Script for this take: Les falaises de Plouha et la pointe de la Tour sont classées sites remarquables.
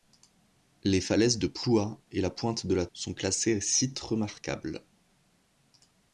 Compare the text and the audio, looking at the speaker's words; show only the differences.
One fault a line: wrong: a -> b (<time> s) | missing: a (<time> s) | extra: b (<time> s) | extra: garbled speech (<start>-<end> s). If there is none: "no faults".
missing: Tour (2.9 s)